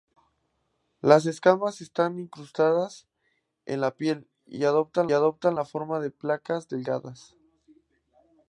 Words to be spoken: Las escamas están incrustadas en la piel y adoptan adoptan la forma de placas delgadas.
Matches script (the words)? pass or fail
pass